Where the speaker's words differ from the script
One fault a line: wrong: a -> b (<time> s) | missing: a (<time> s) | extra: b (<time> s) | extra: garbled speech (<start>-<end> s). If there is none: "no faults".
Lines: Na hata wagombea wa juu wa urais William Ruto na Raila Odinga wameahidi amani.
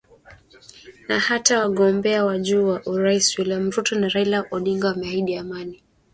no faults